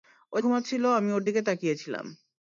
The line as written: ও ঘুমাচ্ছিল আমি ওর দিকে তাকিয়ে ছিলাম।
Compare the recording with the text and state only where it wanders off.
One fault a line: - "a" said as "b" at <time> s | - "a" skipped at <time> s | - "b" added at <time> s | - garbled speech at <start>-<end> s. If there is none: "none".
none